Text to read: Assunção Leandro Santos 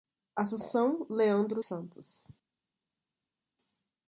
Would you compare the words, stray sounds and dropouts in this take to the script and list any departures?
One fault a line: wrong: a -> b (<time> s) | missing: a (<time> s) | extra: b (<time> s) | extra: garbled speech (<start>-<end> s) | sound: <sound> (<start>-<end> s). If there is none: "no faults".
no faults